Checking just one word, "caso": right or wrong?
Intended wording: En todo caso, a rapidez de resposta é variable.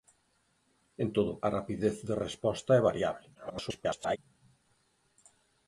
wrong